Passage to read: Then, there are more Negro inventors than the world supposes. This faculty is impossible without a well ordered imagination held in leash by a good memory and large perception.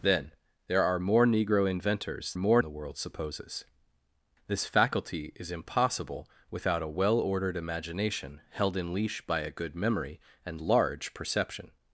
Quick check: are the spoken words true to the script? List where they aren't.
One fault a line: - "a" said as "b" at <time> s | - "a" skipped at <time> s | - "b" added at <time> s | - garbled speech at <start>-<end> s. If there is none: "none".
- "than" said as "more" at 2.3 s